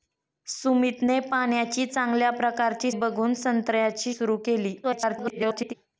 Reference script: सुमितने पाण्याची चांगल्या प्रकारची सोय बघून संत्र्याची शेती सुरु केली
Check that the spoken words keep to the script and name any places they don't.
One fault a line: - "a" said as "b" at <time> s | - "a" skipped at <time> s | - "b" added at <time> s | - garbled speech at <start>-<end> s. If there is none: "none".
- "सोय" skipped at 2.9 s
- "शेती" skipped at 4.1 s
- garbled speech at 4.8-5.7 s